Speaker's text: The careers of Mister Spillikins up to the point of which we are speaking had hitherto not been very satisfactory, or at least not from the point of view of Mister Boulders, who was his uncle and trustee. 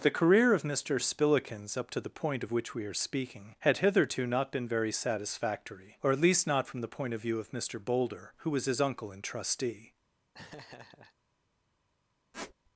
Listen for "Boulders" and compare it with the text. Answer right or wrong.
wrong